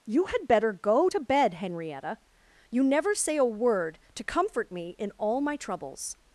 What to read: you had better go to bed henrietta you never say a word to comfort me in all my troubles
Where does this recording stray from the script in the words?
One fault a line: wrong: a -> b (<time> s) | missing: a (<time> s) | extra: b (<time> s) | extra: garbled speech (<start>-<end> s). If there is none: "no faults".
no faults